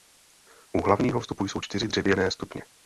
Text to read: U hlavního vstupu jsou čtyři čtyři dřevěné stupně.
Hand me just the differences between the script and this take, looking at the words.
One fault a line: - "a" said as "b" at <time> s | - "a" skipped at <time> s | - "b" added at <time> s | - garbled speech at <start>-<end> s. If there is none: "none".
- "čtyři" skipped at 1.9 s